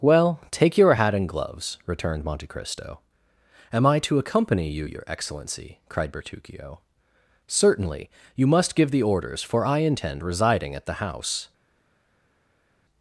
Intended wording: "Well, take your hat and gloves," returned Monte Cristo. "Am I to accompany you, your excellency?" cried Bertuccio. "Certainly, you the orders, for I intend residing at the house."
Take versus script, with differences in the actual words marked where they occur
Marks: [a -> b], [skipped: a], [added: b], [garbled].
"Well, take your hat and gloves," returned Monte Cristo. "Am I to accompany you, your excellency?" cried Bertuccio. "Certainly, you [added: must give] the orders, for I intend residing at the house."